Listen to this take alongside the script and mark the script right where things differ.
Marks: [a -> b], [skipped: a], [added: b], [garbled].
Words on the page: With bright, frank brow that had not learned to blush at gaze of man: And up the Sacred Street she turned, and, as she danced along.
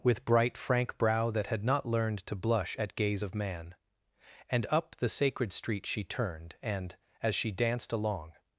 With bright, frank brow that had not learned to blush at gaze of man: And up the Sacred Street she turned, and, as she danced along.